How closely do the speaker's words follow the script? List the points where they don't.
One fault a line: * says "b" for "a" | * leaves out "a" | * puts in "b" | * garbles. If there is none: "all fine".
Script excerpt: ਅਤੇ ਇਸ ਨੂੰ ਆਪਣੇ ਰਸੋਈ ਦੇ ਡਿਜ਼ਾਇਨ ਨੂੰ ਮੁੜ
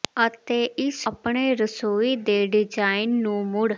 * leaves out "ਨੂੰ"